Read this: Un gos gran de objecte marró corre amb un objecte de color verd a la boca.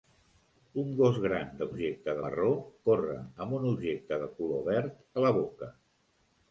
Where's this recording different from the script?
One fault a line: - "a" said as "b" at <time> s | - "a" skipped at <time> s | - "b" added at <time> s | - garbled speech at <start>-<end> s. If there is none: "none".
none